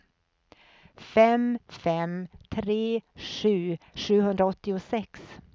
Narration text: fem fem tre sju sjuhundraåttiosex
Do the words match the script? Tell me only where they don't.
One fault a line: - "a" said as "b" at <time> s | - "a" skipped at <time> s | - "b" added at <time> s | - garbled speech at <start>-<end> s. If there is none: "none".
none